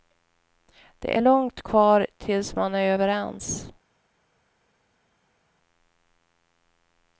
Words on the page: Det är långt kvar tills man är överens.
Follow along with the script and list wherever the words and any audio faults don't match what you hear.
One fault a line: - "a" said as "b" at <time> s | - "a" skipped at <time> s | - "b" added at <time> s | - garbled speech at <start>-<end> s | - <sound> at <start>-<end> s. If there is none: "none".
none